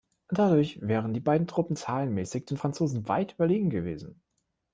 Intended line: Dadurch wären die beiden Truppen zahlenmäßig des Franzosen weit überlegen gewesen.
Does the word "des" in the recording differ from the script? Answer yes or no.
yes